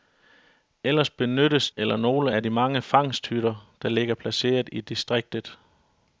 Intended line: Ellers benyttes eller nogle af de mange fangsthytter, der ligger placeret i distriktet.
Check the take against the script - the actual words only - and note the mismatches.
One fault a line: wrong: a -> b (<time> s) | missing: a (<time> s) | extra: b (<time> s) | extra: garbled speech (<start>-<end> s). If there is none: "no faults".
no faults